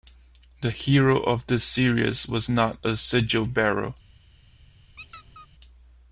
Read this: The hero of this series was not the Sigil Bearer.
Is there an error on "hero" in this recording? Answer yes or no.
no